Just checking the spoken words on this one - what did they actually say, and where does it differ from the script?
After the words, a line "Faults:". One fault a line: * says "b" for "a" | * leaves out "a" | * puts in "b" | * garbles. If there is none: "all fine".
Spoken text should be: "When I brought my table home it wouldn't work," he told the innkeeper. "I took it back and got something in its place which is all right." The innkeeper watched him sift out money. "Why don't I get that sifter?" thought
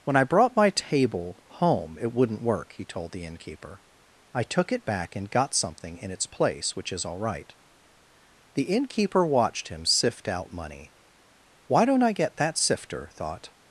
"When I brought my table home it wouldn't work," he told the innkeeper. "I took it back and got something in its place which is all right." The innkeeper watched him sift out money. "Why don't I get that sifter?" thought
Faults:
all fine